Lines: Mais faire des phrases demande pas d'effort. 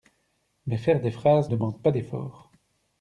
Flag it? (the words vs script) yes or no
no